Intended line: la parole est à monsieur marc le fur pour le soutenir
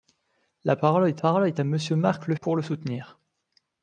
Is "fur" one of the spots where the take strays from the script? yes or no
yes